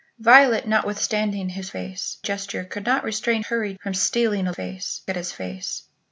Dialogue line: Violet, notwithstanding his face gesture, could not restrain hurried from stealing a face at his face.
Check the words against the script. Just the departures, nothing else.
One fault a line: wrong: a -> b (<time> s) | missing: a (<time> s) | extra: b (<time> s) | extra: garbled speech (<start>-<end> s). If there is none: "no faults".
no faults